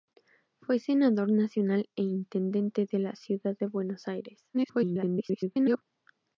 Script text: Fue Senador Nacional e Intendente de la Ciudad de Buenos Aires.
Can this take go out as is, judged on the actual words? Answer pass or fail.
fail